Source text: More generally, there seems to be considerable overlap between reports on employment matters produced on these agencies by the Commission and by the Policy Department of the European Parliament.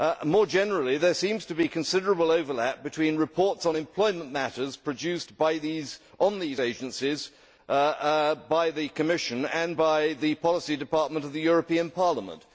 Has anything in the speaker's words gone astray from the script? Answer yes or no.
no